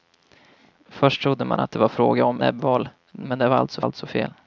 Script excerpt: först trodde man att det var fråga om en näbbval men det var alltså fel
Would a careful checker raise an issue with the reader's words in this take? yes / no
yes